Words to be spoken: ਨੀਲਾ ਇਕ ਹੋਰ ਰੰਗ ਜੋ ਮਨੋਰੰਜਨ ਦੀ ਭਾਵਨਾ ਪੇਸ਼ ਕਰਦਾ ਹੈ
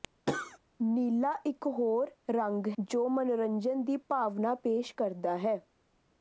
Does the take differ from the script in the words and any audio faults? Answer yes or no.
yes